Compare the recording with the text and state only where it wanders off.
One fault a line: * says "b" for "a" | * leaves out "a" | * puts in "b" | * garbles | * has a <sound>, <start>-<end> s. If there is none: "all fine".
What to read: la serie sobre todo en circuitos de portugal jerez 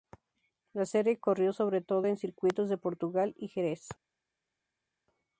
* puts in "corrió"
* puts in "y"